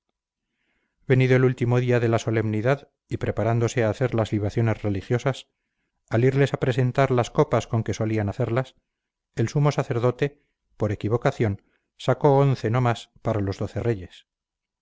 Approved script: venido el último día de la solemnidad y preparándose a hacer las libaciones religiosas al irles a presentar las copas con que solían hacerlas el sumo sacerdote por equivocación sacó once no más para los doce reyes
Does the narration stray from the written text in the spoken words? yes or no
no